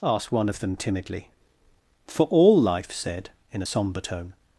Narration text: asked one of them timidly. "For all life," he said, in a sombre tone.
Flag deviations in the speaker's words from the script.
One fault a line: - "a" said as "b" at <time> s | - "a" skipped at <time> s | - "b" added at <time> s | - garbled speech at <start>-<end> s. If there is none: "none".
- "he" skipped at 2.9 s